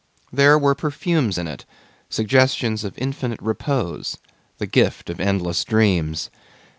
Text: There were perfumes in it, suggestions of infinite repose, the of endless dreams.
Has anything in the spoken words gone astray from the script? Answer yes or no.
yes